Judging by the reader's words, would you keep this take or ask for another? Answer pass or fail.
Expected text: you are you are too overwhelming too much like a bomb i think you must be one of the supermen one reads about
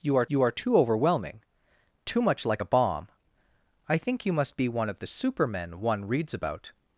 pass